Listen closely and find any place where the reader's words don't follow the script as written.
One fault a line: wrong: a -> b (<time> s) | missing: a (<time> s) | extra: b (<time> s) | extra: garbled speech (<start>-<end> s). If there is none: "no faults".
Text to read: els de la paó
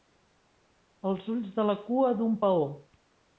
extra: ulls (1.4 s)
extra: cua d'un (1.9 s)